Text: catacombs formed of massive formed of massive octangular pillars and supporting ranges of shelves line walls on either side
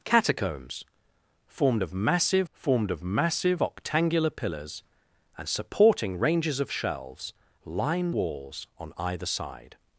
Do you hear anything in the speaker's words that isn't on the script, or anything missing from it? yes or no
no